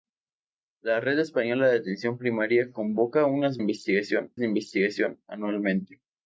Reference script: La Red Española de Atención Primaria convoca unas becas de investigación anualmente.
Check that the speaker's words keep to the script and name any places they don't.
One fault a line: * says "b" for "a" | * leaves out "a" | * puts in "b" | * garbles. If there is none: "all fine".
* says "investigación" for "becas"